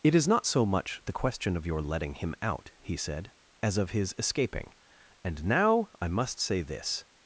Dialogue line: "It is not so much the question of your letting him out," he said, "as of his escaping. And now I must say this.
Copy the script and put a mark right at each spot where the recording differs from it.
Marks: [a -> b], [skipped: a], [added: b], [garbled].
"It is not so much the question of your letting him out," he said, "as of his escaping. And now I must say this.